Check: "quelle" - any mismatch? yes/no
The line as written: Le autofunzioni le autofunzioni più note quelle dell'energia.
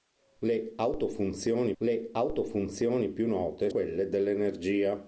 no